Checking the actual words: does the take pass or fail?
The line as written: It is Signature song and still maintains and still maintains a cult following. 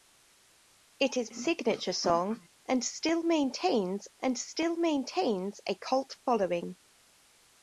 pass